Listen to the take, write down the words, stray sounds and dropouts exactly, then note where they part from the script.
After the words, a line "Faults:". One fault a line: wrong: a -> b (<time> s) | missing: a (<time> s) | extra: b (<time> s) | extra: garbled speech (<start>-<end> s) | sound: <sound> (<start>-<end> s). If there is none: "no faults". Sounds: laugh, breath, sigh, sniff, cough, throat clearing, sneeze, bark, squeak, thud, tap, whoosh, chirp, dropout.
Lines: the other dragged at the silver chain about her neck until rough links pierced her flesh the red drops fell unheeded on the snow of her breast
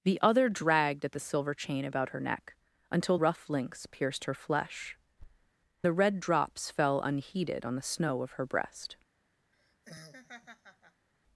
the other dragged at the silver chain about her neck until rough links pierced her flesh the red drops fell unheeded on the snow of her breast
Faults:
sound: thud (5.2-5.5 s)
sound: laugh (9.5-11.1 s)